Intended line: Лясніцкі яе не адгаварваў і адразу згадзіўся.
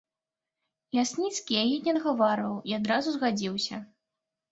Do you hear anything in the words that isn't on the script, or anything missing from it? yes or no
no